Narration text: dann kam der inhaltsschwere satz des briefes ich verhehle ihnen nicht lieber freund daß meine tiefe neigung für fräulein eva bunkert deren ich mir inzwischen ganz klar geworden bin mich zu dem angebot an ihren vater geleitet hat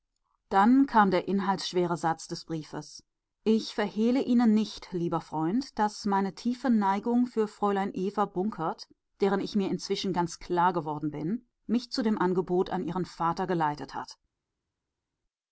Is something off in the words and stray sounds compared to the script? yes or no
no